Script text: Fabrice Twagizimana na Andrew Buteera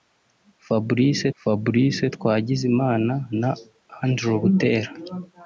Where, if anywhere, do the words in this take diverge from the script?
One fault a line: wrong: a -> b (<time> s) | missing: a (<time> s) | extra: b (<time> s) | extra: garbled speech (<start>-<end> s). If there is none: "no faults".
extra: fabrice (1.4 s)